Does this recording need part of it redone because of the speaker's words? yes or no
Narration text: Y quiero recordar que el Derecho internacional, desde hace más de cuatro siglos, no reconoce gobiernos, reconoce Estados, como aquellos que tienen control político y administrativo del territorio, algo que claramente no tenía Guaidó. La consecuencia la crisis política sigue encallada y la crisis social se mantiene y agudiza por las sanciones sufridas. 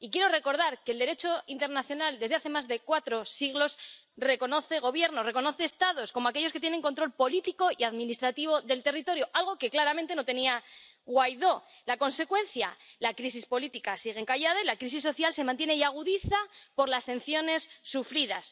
yes